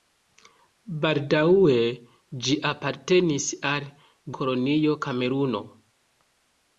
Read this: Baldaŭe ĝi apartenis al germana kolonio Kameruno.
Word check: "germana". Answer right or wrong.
wrong